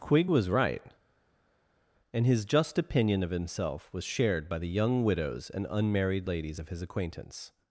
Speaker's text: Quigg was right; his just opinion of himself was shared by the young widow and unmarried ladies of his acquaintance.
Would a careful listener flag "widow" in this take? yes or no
yes